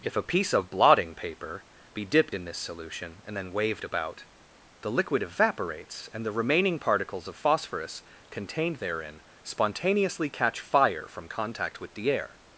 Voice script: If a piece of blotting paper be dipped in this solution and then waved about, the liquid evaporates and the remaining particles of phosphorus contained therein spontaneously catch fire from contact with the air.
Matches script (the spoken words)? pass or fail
pass